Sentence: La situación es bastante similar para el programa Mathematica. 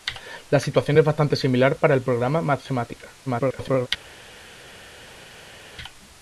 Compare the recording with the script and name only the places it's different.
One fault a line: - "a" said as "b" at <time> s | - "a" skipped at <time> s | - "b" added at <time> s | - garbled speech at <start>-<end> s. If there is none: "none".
- garbled speech at 3.3-3.9 s